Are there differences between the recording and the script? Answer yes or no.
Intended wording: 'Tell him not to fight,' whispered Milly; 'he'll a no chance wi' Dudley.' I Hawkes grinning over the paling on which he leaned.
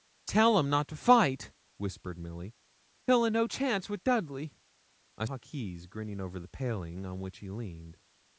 no